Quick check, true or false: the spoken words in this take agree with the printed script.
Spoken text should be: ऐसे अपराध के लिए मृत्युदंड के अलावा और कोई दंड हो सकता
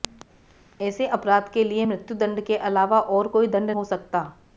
true